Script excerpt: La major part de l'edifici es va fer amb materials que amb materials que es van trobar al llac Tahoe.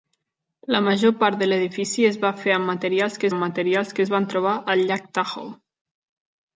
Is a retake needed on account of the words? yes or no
no